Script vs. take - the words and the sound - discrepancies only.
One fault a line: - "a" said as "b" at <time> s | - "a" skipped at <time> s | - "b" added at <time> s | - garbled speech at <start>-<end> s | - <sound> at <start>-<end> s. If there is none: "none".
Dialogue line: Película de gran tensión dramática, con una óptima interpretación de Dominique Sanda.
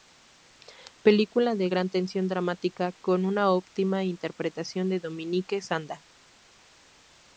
none